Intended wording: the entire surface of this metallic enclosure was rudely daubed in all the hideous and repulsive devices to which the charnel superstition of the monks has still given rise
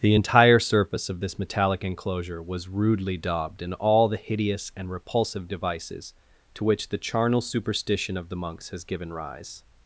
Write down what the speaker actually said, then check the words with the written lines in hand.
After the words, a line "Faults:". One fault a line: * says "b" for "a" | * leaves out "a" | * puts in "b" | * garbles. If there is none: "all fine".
the entire surface of this metallic enclosure was rudely daubed in all the hideous and repulsive devices to which the charnel superstition of the monks has given rise
Faults:
* leaves out "still"